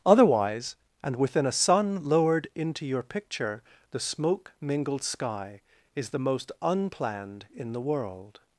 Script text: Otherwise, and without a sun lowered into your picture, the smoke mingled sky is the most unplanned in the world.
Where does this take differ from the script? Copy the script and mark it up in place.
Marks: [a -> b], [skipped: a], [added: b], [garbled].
Otherwise, and [without -> within] a sun lowered into your picture, the smoke mingled sky is the most unplanned in the world.